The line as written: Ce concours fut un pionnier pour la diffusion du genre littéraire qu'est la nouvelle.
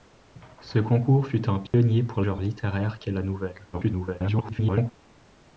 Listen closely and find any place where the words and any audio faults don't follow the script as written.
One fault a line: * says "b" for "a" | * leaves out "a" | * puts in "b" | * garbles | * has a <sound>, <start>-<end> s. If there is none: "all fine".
* has a dropout, 1.7-1.7 s
* leaves out "la diffusion du"
* garbles